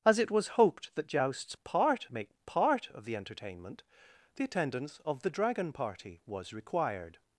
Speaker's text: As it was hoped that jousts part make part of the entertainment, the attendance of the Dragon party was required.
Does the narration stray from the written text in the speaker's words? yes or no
no